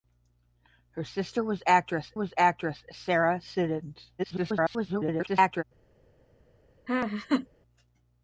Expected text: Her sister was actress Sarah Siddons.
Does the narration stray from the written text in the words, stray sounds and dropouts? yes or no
yes